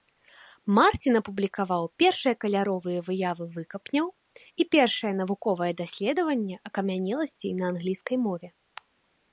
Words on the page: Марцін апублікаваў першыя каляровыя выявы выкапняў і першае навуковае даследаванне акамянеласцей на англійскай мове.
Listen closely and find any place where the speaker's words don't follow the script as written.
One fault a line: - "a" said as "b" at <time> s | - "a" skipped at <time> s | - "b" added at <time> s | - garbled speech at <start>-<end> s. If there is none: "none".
none